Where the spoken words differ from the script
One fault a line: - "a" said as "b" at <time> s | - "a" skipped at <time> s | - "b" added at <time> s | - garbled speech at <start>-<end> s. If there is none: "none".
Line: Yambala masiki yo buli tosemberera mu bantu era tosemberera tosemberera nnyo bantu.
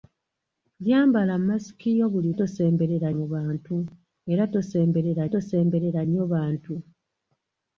none